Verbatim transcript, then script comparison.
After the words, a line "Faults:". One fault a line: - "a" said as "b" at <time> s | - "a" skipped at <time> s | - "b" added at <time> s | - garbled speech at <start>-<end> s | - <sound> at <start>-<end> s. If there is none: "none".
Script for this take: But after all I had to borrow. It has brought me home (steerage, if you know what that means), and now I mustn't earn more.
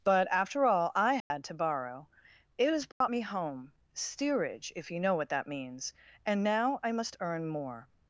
But after all I had to borrow. It has brought me home (steerage, if you know what that means), and now I must earn more.
Faults:
- dropout at 1.2-1.3 s
- dropout at 2.9-3.0 s
- "mustn't" said as "must" at 6.9 s